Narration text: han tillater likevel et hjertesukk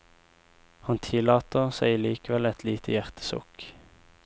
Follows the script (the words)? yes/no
no